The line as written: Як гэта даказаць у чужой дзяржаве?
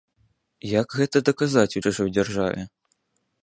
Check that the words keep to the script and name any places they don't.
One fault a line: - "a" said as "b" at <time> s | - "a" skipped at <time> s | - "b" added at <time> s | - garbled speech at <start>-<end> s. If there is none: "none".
none